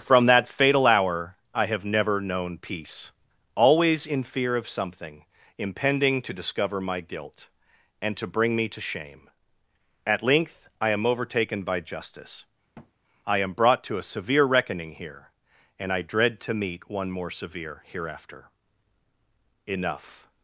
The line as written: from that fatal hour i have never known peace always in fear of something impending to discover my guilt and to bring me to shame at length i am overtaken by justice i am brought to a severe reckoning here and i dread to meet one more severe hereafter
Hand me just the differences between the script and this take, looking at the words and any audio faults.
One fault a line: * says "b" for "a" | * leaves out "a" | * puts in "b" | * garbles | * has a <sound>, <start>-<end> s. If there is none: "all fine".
* has a thud, 12.7-12.9 s
* puts in "enough"